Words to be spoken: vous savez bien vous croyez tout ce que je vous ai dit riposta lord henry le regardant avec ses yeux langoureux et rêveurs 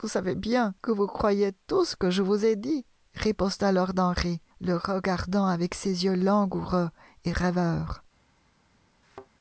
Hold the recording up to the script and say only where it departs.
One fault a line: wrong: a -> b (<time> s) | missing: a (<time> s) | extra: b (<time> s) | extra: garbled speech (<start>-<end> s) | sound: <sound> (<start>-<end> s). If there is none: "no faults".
extra: que (0.8 s)
sound: thud (9.0-9.3 s)